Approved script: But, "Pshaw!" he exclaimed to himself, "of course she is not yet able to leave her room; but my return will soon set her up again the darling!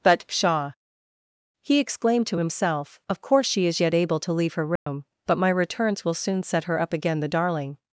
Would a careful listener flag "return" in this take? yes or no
yes